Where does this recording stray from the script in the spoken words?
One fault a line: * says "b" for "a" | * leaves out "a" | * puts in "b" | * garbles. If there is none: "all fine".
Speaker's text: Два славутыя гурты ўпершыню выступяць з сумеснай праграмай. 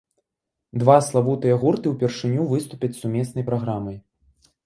all fine